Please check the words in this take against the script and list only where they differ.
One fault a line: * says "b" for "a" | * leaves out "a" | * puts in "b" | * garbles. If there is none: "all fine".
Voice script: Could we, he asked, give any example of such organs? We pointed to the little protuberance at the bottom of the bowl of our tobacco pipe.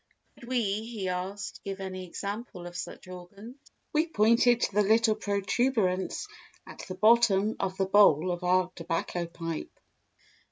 all fine